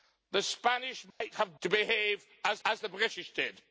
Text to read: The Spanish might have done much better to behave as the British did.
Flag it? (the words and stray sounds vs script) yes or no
yes